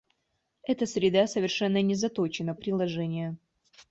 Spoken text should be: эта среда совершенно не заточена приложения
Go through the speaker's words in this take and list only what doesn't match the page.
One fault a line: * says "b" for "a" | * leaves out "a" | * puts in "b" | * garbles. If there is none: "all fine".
all fine